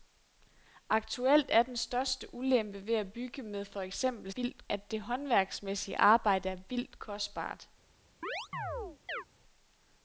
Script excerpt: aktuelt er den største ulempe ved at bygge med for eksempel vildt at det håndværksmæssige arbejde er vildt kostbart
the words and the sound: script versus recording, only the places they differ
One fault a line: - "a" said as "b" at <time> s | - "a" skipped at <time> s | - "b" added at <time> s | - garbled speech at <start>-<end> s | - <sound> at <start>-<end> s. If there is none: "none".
- chirp at 8.2-9.2 s